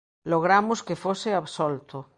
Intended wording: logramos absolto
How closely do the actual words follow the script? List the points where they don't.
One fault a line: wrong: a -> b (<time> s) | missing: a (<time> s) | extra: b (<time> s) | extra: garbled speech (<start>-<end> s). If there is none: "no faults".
extra: que fose (0.8 s)